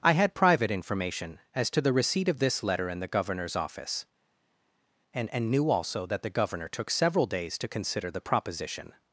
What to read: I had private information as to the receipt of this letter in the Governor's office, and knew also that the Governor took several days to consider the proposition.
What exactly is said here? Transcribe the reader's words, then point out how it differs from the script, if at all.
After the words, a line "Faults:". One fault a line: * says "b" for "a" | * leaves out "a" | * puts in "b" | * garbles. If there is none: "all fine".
I had private information as to the receipt of this letter in the Governor's office, and and knew also that the Governor took several days to consider the proposition.
Faults:
* puts in "and"